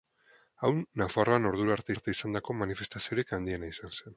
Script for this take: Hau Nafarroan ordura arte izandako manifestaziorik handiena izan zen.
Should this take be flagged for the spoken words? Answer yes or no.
yes